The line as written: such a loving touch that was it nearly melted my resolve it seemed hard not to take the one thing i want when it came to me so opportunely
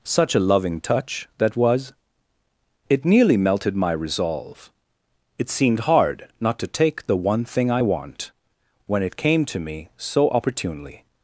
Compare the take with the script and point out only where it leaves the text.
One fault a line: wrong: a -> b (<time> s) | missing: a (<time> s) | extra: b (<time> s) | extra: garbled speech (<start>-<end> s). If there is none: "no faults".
no faults